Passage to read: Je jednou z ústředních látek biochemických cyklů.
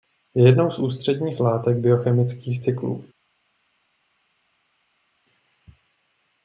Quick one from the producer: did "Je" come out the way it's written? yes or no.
yes